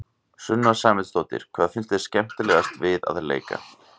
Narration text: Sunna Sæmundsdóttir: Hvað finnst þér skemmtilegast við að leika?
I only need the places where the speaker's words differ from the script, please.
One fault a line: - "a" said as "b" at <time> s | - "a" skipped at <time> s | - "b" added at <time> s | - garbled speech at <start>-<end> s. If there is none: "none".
none